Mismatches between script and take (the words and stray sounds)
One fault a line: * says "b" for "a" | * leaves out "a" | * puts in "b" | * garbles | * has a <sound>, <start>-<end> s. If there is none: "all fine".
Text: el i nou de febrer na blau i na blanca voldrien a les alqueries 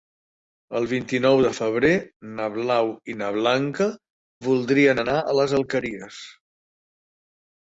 * puts in "vint"
* puts in "anar"